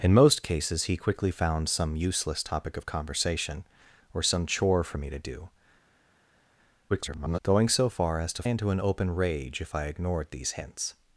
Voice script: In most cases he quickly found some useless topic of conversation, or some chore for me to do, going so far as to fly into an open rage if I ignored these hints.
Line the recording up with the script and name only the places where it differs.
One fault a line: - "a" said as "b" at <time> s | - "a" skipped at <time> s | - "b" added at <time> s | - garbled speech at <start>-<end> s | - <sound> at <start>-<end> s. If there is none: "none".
- garbled speech at 6.9-7.4 s
- "fly" skipped at 8.4 s